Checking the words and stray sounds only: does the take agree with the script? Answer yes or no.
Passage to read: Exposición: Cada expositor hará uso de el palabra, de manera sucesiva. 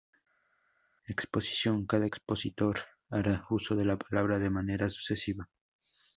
no